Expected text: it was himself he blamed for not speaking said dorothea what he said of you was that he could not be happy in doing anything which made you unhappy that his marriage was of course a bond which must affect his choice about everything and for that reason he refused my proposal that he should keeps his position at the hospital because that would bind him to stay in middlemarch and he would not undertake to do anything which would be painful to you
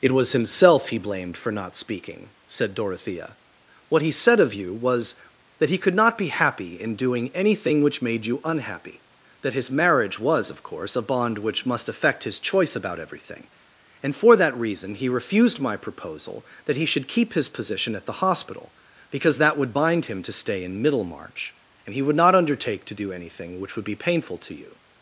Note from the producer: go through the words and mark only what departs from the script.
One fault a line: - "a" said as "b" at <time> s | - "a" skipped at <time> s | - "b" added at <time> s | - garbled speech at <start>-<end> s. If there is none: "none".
- "keeps" said as "keep" at 17.1 s